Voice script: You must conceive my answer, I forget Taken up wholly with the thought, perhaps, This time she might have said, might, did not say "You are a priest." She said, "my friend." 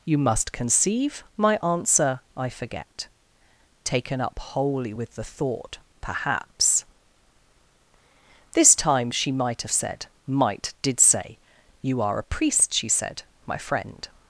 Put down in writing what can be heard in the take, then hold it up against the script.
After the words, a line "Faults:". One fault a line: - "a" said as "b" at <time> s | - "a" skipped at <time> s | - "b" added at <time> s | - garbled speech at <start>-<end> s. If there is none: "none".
You must conceive my answer, I forget Taken up wholly with the thought, perhaps, This time she might have said, might, did say "You are a priest." She said, "my friend."
Faults:
- "not" skipped at 11.0 s